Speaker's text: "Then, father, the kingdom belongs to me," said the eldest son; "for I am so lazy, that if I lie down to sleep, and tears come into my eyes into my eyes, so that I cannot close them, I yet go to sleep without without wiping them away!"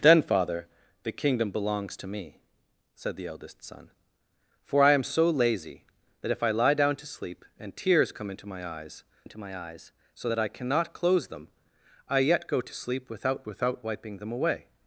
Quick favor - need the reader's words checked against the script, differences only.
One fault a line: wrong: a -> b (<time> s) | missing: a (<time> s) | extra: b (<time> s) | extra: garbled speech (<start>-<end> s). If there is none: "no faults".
no faults